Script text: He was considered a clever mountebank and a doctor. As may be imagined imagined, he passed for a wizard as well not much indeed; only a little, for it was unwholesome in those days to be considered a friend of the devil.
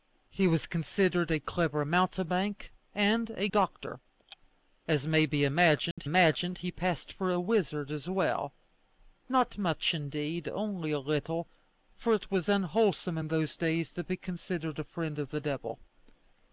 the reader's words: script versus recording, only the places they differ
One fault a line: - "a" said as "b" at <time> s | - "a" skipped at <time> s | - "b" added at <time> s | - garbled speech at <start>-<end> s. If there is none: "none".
none